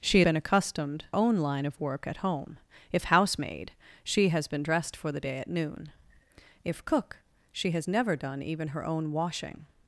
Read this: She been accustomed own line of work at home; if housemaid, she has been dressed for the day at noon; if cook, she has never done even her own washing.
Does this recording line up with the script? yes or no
yes